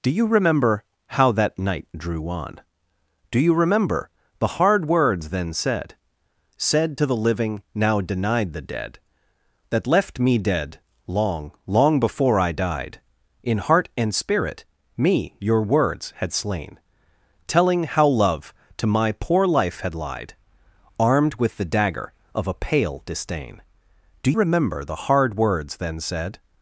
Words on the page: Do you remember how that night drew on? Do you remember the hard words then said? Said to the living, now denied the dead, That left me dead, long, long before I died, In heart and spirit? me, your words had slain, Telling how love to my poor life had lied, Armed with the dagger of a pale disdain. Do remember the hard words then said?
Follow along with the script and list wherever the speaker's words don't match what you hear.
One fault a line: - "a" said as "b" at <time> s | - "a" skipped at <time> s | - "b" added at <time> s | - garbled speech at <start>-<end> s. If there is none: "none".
none